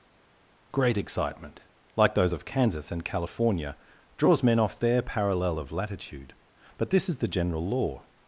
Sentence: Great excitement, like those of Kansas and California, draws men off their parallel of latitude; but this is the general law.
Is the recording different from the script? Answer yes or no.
no